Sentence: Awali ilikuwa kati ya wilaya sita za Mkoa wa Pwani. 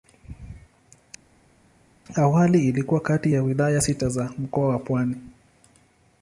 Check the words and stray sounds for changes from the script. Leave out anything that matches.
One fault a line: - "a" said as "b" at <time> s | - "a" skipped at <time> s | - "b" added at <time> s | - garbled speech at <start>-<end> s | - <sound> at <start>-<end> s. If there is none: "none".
none